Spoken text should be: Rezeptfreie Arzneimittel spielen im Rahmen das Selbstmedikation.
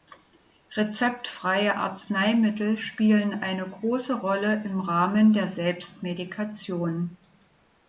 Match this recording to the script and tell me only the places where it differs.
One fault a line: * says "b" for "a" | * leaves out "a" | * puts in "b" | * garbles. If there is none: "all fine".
* puts in "eine große Rolle"
* says "der" for "das"